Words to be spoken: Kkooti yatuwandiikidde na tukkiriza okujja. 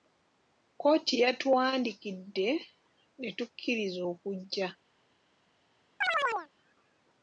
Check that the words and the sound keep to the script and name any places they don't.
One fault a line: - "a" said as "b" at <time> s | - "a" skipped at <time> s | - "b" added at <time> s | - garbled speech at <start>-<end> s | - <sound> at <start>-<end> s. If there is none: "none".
- "na" said as "ne" at 3.2 s
- chirp at 6.0-6.5 s